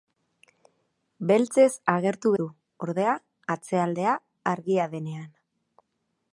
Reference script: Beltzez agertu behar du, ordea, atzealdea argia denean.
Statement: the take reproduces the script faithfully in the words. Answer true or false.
false